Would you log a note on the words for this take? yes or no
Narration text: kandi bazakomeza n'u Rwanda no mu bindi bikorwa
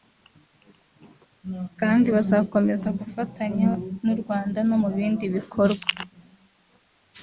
yes